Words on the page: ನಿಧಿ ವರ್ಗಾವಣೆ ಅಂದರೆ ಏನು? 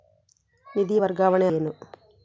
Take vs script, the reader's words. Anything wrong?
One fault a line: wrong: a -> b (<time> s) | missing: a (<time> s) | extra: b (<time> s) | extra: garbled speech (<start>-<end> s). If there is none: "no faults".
missing: ಅಂದರೆ (1.5 s)